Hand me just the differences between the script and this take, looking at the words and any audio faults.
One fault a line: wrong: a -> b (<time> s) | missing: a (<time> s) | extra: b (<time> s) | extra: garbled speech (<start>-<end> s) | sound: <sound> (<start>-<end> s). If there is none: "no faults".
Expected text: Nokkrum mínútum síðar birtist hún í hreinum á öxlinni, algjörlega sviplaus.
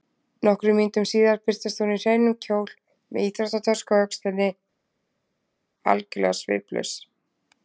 extra: kjól með íþróttatösku (2.5 s)